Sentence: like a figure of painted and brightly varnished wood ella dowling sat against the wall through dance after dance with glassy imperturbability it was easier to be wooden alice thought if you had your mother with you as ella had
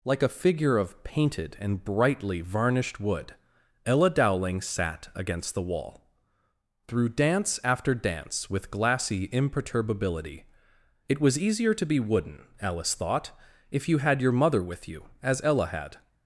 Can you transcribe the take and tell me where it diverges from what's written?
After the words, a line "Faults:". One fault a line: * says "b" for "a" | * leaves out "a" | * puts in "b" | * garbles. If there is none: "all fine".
like a figure of painted and brightly varnished wood ella dowling sat against the wall through dance after dance with glassy imperturbability it was easier to be wooden alice thought if you had your mother with you as ella had
Faults:
all fine